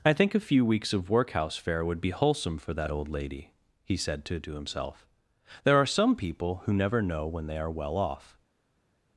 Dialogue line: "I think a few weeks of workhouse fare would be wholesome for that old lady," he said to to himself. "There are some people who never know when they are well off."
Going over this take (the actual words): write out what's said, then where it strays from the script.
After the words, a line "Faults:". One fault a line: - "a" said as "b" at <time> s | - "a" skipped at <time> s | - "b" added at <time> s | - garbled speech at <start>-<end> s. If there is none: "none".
"I think a few weeks of workhouse fare would be wholesome for that old lady," he said to to himself. "There are some people who never know when they are well off."
Faults:
none